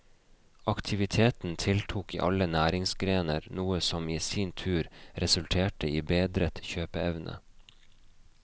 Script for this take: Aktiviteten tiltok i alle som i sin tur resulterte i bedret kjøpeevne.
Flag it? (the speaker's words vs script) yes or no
yes